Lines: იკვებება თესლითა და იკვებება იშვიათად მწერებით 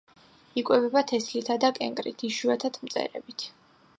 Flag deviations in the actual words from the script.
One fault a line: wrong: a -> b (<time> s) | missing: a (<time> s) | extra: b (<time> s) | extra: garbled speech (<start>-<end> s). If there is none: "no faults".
wrong: იკვებება -> კენკრით (1.8 s)